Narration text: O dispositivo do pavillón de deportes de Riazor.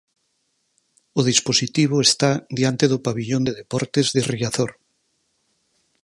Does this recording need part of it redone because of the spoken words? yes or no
yes